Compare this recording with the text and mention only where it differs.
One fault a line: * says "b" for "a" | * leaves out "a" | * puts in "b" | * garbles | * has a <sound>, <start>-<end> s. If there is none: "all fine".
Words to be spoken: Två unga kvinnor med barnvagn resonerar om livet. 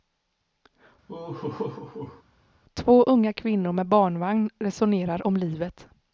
* has a laugh, 1.1-2.2 s